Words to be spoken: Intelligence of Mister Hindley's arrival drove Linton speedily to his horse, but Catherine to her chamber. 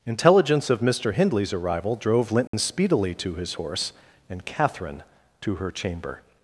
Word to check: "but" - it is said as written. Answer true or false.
false